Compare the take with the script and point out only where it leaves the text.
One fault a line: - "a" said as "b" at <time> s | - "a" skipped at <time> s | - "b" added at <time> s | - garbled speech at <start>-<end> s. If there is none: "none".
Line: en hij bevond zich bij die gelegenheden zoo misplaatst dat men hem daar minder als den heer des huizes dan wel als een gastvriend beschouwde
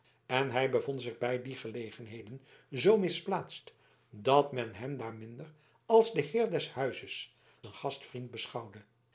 - "dan wel als" skipped at 7.3 s